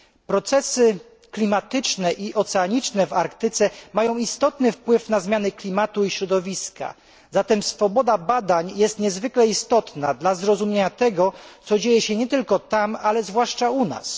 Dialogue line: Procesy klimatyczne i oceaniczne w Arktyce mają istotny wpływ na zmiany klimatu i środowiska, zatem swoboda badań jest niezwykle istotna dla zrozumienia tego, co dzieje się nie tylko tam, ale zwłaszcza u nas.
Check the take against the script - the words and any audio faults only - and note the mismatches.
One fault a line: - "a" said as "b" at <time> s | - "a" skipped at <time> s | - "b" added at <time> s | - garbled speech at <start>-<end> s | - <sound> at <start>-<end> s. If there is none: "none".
none